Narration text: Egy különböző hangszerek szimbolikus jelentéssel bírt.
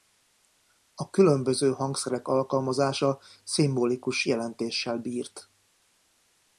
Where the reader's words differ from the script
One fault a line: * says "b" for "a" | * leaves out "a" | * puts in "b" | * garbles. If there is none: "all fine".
* says "A" for "Egy"
* puts in "alkalmazása"